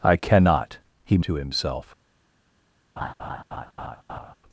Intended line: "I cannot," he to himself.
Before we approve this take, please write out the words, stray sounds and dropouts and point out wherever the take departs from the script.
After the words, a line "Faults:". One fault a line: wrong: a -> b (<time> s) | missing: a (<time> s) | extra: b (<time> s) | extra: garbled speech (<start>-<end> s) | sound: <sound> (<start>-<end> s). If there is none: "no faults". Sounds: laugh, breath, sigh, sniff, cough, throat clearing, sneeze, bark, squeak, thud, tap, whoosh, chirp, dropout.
"I cannot," he to himself.
Faults:
sound: laugh (3.0-4.3 s)